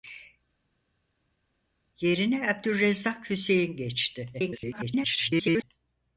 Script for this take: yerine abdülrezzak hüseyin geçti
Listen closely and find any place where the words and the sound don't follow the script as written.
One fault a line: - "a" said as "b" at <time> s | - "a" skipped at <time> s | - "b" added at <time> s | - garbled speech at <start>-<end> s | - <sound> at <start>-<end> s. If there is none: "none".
- garbled speech at 4.3-5.6 s